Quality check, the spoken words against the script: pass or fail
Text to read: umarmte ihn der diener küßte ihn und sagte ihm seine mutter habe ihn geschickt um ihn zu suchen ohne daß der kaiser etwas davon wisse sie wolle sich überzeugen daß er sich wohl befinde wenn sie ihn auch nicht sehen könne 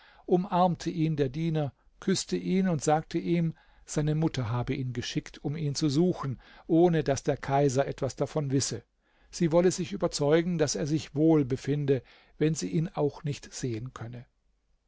pass